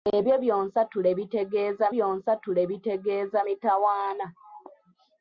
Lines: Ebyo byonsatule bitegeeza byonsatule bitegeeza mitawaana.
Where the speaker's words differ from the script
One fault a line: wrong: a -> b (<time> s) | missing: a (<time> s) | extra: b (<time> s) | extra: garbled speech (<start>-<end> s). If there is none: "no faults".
no faults